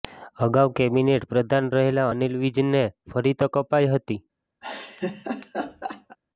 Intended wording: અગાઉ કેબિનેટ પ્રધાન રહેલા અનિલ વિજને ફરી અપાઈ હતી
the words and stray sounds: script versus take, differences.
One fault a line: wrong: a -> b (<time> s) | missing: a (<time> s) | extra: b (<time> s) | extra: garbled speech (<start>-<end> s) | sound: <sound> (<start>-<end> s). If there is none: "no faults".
extra: તક (3.4 s)
sound: laugh (4.6-6.2 s)